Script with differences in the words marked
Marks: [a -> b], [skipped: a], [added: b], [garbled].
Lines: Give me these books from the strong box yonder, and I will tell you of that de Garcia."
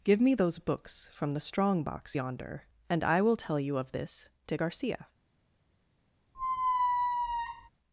Give me [these -> those] books from the strong box yonder, and I will tell you of [that -> this] de Garcia."